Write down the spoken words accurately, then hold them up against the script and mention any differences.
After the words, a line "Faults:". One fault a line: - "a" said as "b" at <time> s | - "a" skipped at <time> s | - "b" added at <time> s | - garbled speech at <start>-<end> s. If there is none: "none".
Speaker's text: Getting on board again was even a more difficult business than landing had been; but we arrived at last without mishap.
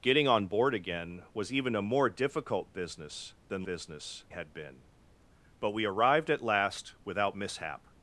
Getting on board again was even a more difficult business than business had been; but we arrived at last without mishap.
Faults:
- "landing" said as "business" at 3.6 s